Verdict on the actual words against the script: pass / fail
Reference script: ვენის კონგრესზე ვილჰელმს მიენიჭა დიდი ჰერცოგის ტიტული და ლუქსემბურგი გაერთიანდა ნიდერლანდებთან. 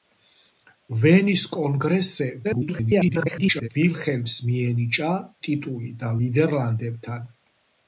fail